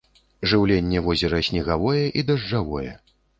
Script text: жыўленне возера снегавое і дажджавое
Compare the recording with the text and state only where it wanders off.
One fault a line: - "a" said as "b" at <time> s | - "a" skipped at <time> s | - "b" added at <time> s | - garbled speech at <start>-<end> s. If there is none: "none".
none